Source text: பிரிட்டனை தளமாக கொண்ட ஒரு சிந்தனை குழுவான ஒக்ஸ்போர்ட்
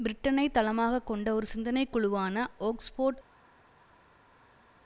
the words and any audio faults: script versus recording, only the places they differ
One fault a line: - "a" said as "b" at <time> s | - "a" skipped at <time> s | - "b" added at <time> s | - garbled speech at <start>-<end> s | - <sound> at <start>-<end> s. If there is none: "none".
none